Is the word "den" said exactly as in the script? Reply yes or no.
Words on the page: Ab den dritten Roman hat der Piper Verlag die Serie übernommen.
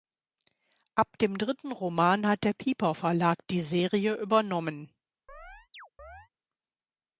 no